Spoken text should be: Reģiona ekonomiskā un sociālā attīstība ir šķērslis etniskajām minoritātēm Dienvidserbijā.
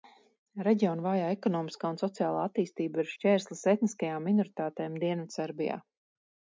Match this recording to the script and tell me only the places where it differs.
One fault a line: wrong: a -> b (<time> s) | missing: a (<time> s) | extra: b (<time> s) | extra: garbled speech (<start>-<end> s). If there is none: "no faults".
extra: vājā (1.1 s)